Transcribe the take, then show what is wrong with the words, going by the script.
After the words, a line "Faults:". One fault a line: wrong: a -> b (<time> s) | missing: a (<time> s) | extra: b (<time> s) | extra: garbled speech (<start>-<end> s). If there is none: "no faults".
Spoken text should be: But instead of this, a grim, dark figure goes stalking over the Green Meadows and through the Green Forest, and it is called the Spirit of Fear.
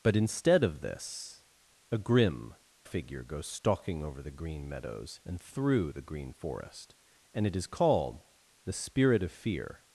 But instead of this, a grim, figure goes stalking over the Green Meadows and through the Green Forest, and it is called the Spirit of Fear.
Faults:
missing: dark (2.5 s)